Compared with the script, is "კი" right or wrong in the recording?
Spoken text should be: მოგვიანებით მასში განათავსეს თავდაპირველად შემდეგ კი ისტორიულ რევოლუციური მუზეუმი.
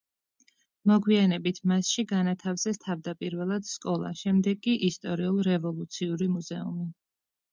right